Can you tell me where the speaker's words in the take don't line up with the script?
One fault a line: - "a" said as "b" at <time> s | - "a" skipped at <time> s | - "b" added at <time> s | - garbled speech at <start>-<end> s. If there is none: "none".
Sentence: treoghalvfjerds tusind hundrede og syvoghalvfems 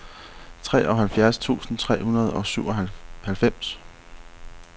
- "tre" added at 1.8 s